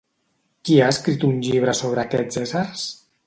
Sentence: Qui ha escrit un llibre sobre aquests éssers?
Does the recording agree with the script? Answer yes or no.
yes